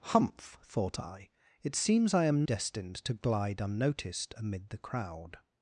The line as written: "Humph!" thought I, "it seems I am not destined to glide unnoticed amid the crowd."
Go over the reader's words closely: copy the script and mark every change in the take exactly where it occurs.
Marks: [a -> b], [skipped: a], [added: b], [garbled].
"Humph!" thought I, "it seems I am [skipped: not] destined to glide unnoticed amid the crowd."